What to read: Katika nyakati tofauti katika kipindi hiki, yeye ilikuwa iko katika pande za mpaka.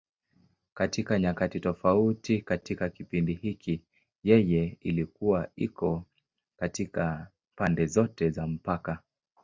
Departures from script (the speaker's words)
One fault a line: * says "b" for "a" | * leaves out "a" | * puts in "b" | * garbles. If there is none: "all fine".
* puts in "zote"